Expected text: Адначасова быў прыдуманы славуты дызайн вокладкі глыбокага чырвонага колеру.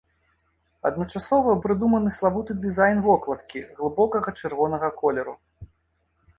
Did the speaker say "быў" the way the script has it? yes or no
no